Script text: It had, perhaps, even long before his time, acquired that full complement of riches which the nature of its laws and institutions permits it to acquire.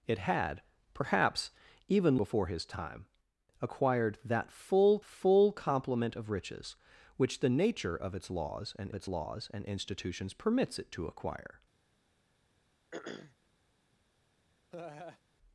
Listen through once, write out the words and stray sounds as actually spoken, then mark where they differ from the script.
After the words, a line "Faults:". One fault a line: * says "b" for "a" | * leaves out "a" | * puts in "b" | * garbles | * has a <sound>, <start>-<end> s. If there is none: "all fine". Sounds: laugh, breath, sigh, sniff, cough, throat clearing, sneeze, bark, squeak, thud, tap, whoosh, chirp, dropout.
It had, perhaps, even before his time, acquired that full full complement of riches which the nature of its laws and its laws and institutions permits it to acquire.
Faults:
* leaves out "long"
* puts in "full"
* puts in "its laws and"
* has a throat clearing, 12.9-13.4 s
* has a laugh, 14.7-15.2 s